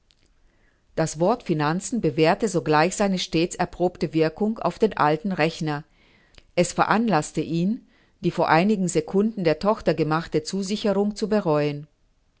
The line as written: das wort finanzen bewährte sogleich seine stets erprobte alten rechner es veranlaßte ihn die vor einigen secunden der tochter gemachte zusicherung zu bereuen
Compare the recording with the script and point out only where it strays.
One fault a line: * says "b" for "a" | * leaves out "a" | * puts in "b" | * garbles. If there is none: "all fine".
* puts in "wirkung auf den"